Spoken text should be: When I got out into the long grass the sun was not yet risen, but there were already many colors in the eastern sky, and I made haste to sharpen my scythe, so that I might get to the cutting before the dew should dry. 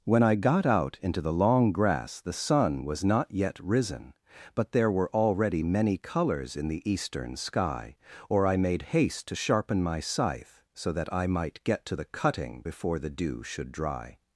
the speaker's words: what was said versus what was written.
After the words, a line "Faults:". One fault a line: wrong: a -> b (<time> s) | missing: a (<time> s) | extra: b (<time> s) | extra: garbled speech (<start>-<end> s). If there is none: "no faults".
When I got out into the long grass the sun was not yet risen, but there were already many colors in the eastern sky, or I made haste to sharpen my scythe, so that I might get to the cutting before the dew should dry.
Faults:
wrong: and -> or (8.3 s)